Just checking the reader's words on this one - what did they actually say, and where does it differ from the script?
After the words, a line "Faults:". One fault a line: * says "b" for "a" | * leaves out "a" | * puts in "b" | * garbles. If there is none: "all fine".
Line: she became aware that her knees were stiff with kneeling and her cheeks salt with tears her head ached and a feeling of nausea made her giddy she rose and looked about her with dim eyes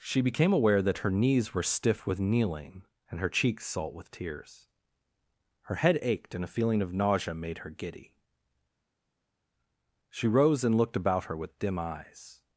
she became aware that her knees were stiff with kneeling and her cheeks salt with tears her head ached and a feeling of nausea made her giddy she rose and looked about her with dim eyes
Faults:
all fine